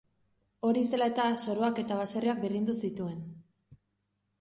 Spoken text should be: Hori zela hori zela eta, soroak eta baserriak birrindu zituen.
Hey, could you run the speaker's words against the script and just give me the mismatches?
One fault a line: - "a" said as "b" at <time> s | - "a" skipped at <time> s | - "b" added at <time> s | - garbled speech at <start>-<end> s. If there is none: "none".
- "hori zela" skipped at 1.1 s